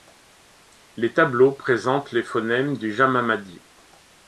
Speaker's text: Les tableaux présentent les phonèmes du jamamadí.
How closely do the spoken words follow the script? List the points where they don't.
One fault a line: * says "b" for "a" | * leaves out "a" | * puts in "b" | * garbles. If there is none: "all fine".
all fine